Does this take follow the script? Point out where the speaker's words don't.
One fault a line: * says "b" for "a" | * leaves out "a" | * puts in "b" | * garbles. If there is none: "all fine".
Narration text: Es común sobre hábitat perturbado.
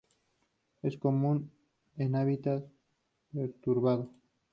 * says "en" for "sobre"